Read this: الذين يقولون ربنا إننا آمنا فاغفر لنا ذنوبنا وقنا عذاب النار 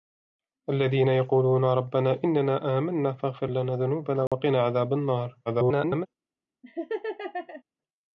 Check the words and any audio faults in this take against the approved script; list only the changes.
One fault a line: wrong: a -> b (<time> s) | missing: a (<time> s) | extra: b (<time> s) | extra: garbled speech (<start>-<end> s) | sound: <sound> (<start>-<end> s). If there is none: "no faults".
sound: dropout (4.3-4.3 s)
extra: garbled speech (5.5-6.1 s)
sound: laugh (6.6-7.6 s)